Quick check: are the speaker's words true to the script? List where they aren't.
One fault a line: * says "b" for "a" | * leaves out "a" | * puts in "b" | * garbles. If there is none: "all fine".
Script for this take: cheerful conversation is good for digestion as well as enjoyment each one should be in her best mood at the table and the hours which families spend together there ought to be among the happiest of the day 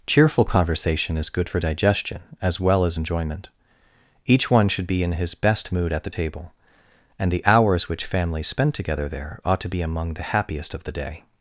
* says "his" for "her"